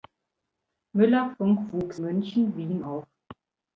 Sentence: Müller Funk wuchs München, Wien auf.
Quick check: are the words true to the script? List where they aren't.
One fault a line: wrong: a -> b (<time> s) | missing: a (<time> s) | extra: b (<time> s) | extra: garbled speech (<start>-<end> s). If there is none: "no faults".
no faults